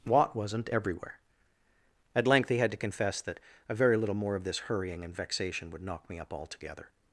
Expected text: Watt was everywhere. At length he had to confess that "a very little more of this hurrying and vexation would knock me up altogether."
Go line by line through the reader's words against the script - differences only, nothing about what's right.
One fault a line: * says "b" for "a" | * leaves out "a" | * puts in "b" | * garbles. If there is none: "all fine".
* says "wasn't" for "was"